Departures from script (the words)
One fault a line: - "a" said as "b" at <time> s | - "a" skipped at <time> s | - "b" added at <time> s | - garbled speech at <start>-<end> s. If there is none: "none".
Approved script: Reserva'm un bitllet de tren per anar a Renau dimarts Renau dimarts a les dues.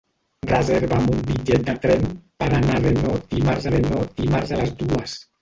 none